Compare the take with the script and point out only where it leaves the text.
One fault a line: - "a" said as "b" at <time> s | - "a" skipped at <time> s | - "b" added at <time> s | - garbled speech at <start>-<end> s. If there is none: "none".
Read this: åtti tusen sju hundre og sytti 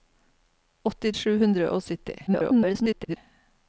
- "tusen" skipped at 1.1 s
- garbled speech at 2.3-3.2 s